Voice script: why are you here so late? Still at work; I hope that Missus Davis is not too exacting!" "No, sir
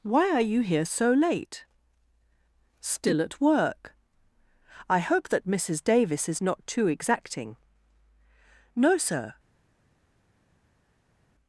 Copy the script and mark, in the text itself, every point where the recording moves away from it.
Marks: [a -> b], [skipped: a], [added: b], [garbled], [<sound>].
why are you here so late? Still at work; I hope that Missus Davis is not too exacting!" "No, sir